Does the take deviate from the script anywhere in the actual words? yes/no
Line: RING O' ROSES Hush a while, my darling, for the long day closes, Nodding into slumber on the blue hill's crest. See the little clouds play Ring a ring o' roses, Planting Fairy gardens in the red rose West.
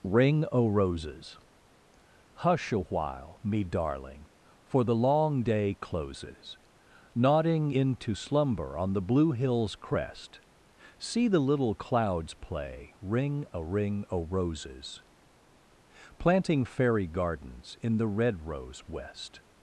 yes